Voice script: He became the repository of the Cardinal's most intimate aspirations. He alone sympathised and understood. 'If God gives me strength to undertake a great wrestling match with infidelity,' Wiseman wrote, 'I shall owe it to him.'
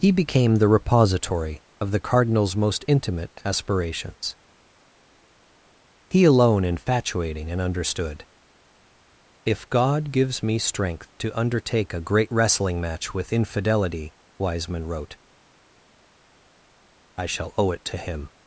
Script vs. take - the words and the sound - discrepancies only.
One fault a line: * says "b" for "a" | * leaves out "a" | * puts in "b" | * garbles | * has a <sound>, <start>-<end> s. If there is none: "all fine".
* says "infatuating" for "sympathised"